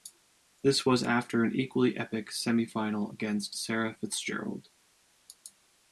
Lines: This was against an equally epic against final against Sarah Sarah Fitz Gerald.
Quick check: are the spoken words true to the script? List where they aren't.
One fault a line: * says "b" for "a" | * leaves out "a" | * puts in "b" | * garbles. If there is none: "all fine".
* says "after" for "against"
* says "semi" for "against"
* leaves out "Sarah"